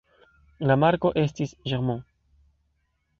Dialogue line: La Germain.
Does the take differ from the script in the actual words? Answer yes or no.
yes